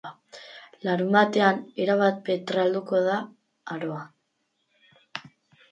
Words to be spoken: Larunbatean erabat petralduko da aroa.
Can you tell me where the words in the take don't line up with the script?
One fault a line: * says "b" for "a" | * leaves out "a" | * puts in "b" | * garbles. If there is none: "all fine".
all fine